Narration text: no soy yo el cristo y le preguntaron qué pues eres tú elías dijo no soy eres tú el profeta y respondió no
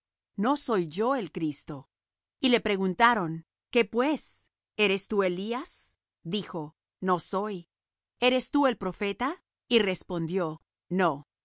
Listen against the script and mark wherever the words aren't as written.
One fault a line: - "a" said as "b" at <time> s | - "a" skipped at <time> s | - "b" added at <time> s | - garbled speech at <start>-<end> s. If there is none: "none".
none